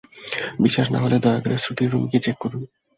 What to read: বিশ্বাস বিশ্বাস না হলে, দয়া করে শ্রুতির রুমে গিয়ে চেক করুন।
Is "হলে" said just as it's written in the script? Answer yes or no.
yes